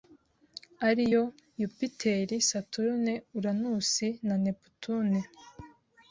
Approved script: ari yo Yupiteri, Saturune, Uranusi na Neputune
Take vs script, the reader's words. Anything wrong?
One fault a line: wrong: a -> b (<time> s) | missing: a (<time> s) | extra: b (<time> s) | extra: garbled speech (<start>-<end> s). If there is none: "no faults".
no faults